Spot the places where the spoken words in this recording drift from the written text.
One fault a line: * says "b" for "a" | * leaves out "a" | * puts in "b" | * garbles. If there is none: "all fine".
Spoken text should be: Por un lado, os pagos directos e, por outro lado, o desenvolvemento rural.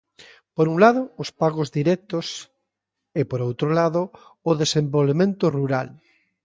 all fine